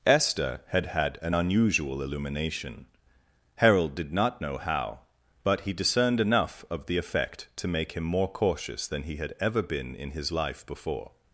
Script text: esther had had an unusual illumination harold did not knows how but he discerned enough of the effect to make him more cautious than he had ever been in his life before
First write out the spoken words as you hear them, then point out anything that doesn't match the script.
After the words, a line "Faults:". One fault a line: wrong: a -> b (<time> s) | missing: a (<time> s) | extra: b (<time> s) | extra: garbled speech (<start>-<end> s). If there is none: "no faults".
esther had had an unusual illumination harold did not know how but he discerned enough of the effect to make him more cautious than he had ever been in his life before
Faults:
wrong: knows -> know (4.4 s)